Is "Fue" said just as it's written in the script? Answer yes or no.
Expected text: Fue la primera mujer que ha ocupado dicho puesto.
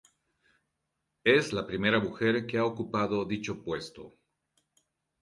no